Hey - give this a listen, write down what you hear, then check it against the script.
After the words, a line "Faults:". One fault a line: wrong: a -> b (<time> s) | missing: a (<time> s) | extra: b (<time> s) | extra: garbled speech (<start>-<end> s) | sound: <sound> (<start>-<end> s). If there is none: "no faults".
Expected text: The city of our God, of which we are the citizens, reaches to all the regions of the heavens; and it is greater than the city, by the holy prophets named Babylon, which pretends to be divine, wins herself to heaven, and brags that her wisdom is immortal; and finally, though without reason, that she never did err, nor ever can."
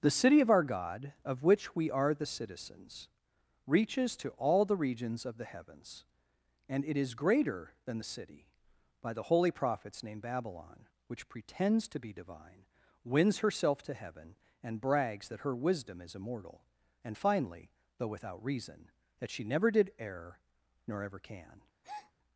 The city of our God, of which we are the citizens, reaches to all the regions of the heavens; and it is greater than the city, by the holy prophets named Babylon, which pretends to be divine, wins herself to heaven, and brags that her wisdom is immortal; and finally, though without reason, that she never did err, nor ever can."
Faults:
sound: breath (21.8-22.1 s)